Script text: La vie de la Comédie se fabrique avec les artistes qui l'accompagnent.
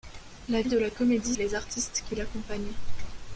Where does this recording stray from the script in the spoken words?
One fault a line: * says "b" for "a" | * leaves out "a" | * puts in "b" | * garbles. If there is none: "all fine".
* leaves out "vie"
* leaves out "se fabrique avec"